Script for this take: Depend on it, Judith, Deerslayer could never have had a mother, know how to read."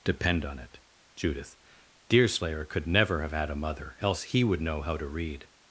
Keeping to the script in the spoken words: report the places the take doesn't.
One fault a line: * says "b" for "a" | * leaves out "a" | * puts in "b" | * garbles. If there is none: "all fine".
* puts in "else he would"